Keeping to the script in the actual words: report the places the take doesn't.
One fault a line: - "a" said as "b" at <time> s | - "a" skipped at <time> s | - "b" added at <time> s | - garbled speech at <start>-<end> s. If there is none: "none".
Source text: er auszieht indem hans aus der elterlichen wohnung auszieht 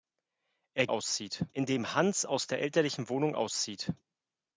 none